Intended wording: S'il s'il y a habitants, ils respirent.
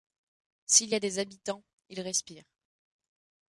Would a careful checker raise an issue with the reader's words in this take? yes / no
yes